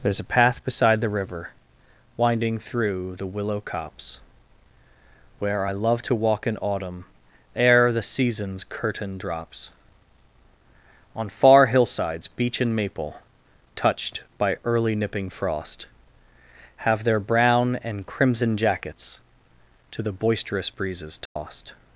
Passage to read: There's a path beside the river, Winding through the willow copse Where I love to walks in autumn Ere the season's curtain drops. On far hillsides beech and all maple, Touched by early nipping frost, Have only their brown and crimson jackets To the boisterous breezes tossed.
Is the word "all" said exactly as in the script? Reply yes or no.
no